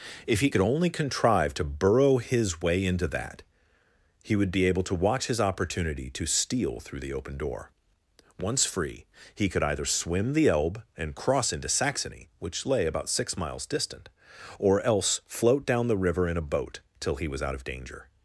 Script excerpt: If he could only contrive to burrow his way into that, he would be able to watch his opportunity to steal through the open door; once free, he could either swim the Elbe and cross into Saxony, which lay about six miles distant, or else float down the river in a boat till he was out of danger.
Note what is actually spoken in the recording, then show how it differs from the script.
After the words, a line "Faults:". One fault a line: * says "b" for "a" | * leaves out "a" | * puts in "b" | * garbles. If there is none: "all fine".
If he could only contrive to burrow his way into that, he would be able to watch his opportunity to steal through the open door; once free, he could either swim the Elbe and cross into Saxony, which lay about six miles distant, or else float down the river in a boat till he was out of danger.
Faults:
all fine